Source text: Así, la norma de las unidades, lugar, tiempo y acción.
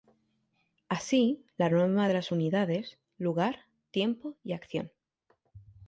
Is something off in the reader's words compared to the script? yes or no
no